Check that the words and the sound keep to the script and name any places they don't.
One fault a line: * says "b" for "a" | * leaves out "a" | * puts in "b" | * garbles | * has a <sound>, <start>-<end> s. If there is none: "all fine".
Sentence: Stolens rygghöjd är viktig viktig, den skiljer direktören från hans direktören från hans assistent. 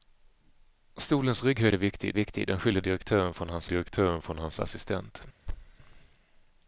* has a thud, 5.5-5.8 s